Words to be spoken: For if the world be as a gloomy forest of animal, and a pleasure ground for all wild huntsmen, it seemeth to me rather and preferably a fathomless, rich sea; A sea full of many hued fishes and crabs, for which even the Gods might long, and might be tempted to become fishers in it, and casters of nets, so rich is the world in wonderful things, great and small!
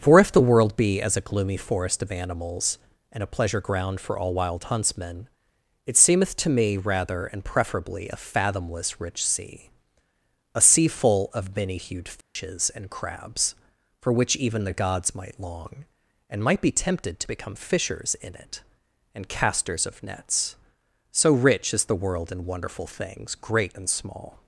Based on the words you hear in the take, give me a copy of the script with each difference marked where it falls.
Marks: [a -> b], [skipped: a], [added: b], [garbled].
For if the world be as a gloomy forest of [animal, -> animals] and a pleasure ground for all wild huntsmen, it seemeth to me rather and preferably a fathomless, rich sea; A sea full of many hued fishes and crabs, for which even the Gods might long, and might be tempted to become fishers in it, and casters of nets, so rich is the world in wonderful things, great and small!